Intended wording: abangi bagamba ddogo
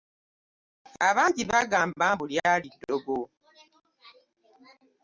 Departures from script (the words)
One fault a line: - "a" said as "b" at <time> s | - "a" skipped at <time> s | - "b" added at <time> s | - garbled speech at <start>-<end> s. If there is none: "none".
- "mbu lyali" added at 2.1 s